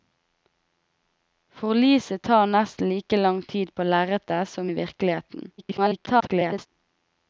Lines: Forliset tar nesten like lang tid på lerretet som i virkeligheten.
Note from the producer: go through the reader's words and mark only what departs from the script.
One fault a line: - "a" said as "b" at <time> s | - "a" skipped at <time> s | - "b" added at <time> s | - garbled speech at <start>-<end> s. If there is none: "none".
- garbled speech at 5.6-6.7 s